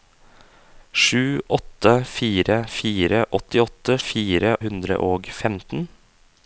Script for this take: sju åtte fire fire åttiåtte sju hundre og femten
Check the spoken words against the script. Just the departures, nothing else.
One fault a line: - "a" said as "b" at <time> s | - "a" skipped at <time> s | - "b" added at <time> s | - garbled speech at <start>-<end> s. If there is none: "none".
- "sju" said as "fire" at 4.1 s